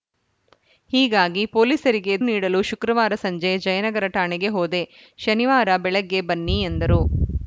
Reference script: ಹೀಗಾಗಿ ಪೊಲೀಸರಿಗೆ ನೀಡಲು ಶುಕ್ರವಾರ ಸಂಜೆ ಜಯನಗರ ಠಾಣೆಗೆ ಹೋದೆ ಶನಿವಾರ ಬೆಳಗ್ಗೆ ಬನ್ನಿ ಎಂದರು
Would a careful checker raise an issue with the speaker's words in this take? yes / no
no